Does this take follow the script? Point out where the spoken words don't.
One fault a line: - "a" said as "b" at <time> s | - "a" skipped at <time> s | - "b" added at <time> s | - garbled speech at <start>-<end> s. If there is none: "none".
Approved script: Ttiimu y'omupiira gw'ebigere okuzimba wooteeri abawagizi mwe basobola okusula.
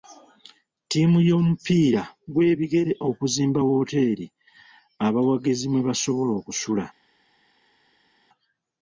none